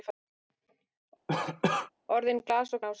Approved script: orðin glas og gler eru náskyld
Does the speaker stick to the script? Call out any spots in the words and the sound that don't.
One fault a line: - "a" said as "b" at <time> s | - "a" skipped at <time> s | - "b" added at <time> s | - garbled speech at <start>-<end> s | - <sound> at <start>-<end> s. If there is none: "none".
- cough at 1.3-1.9 s
- "gler eru" skipped at 2.8 s